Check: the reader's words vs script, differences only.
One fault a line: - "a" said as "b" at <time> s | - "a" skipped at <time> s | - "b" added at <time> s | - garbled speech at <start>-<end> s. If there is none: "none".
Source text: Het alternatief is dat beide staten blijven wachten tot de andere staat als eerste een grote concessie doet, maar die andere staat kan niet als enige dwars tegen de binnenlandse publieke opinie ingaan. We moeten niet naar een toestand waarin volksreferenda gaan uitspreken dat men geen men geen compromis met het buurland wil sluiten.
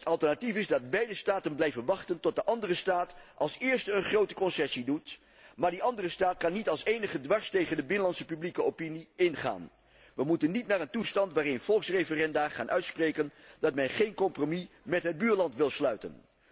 - "men geen" skipped at 14.1 s